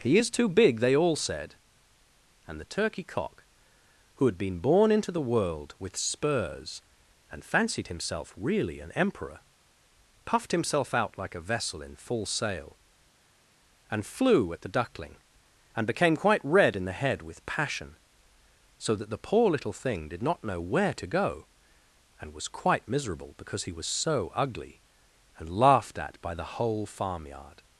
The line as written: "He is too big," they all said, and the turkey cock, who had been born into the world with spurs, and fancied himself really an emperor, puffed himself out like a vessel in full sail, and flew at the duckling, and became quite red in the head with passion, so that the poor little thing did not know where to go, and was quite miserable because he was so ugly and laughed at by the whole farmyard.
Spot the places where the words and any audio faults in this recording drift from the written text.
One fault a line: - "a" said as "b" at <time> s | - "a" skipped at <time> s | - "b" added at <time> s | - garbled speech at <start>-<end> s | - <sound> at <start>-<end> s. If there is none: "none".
none